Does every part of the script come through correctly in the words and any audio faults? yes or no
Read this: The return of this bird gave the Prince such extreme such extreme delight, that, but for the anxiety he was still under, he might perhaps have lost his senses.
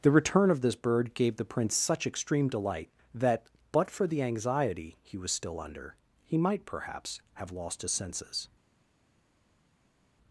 no